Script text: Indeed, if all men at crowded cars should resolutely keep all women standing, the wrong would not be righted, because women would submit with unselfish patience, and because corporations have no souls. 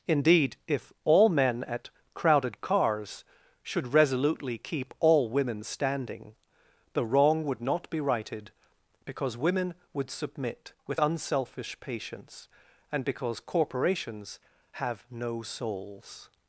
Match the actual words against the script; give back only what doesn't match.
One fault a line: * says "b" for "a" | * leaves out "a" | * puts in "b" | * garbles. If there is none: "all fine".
all fine